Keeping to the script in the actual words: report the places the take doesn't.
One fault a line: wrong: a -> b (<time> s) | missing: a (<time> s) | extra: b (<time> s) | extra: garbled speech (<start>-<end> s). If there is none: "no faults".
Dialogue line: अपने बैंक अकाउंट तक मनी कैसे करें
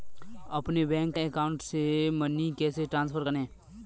wrong: तक -> से (1.6 s)
extra: ट्रांसफर (2.8 s)